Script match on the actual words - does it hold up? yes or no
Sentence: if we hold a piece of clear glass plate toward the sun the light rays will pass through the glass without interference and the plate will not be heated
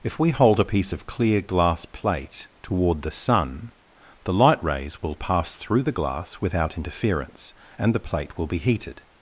no